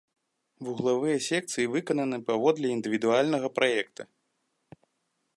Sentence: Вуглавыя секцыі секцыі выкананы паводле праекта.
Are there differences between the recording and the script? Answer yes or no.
yes